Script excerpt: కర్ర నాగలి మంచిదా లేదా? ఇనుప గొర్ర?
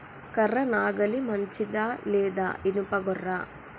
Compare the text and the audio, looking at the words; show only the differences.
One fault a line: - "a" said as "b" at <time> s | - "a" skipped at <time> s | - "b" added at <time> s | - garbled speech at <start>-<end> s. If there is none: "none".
none